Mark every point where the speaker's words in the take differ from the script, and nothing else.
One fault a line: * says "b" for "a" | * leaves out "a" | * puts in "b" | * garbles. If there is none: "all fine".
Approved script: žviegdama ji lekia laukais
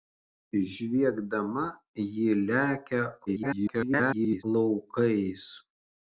* garbles